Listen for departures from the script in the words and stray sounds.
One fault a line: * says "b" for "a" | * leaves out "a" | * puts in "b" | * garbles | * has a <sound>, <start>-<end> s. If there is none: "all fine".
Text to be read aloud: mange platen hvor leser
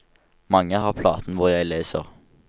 * puts in "har"
* puts in "jeg"